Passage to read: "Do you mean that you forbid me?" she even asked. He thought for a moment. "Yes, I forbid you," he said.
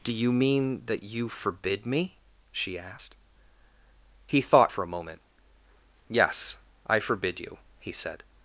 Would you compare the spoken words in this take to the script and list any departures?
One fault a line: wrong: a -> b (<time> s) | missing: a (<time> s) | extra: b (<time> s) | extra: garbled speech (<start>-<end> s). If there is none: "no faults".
missing: even (2.8 s)